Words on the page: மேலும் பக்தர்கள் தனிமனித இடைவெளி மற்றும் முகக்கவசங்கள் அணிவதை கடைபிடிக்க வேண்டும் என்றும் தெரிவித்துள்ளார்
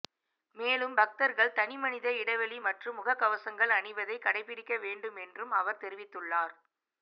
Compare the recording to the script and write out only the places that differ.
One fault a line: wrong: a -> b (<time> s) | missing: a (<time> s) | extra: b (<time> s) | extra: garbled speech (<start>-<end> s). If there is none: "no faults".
extra: அவர் (5.5 s)